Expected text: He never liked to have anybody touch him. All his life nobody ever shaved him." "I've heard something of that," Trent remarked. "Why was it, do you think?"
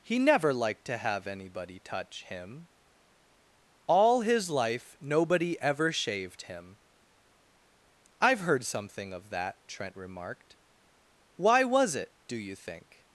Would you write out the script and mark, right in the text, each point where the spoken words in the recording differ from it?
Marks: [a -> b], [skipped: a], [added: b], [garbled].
He never liked to have anybody touch him. All his life nobody ever shaved him." "I've heard something of that," Trent remarked. "Why was it, do you think?"